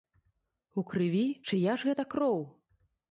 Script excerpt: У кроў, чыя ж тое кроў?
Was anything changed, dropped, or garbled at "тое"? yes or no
yes